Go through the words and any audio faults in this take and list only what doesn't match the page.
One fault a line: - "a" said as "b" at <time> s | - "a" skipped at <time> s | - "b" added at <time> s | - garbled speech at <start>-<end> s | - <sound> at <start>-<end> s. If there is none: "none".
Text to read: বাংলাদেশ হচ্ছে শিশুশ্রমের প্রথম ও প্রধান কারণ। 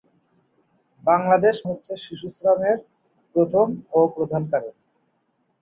none